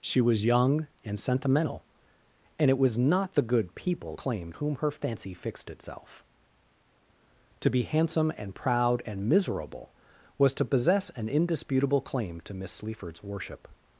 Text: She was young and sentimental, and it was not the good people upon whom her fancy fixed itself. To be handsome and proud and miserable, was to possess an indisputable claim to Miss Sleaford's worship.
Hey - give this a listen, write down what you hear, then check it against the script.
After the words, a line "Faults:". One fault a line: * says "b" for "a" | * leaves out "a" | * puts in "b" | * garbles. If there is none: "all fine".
She was young and sentimental, and it was not the good people claim whom her fancy fixed itself. To be handsome and proud and miserable, was to possess an indisputable claim to Miss Sleaford's worship.
Faults:
* says "claim" for "upon"